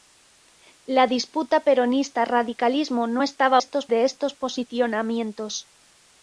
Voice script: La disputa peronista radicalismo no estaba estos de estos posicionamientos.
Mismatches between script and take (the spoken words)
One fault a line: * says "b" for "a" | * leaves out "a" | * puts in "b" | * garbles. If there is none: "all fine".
all fine